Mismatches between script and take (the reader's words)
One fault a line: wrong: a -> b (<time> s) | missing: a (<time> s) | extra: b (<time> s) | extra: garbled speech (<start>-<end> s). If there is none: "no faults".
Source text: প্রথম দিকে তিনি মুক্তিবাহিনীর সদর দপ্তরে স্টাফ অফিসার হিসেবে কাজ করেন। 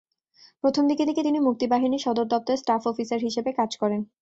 extra: দিকে (1.1 s)